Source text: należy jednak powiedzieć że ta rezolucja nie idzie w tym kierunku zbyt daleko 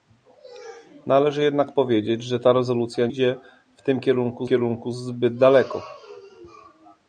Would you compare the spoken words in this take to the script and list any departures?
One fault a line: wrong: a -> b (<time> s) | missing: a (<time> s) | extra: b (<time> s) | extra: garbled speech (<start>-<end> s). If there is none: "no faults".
missing: nie (3.1 s)
extra: kierunku (4.4 s)